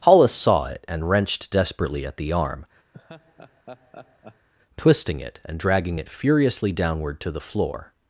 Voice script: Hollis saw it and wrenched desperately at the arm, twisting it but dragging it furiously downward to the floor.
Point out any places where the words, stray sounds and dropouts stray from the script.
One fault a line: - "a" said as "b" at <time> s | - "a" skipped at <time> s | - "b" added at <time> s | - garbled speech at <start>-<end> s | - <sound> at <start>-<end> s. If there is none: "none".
- laugh at 2.9-4.5 s
- "but" said as "and" at 5.4 s